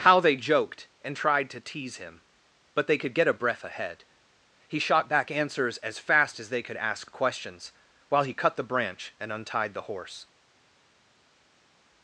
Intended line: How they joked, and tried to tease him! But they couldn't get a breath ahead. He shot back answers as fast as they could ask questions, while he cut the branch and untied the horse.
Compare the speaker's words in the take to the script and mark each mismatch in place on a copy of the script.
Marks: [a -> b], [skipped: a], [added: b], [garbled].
How they joked, and tried to tease him! But they [couldn't -> could] get a breath ahead. He shot back answers as fast as they could ask questions, while he cut the branch and untied the horse.